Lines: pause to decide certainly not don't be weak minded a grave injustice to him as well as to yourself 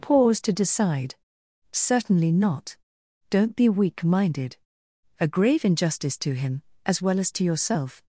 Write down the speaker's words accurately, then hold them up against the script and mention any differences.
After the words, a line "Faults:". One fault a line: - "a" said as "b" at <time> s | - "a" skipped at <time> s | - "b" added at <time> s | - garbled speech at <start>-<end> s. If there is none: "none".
pause to decide certainly not don't be weak minded a grave injustice to him as well as to yourself
Faults:
none